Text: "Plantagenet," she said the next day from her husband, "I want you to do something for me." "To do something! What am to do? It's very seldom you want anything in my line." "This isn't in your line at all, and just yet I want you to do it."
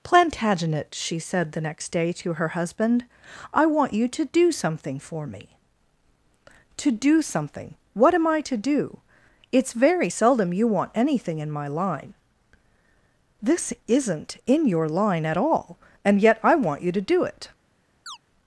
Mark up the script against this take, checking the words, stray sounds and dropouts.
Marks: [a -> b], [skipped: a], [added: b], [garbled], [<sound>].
"Plantagenet," she said the next day [from -> to] her husband, "I want you to do something for me." "To do something! What am [added: I] to do? It's very seldom you want anything in my line." "This isn't in your line at all, and [skipped: just] yet I want you to do it." [chirp]